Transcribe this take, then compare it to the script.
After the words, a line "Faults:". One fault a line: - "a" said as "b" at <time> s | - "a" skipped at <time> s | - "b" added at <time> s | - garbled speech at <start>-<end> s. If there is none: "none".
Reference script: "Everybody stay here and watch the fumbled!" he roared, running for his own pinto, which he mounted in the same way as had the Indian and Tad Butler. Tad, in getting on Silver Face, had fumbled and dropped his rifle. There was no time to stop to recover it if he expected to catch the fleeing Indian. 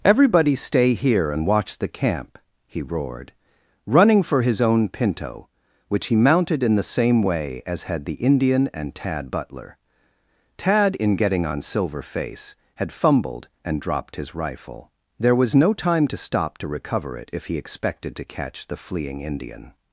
"Everybody stay here and watch the camp!" he roared, running for his own pinto, which he mounted in the same way as had the Indian and Tad Butler. Tad, in getting on Silver Face, had fumbled and dropped his rifle. There was no time to stop to recover it if he expected to catch the fleeing Indian.
Faults:
- "fumbled" said as "camp" at 1.9 s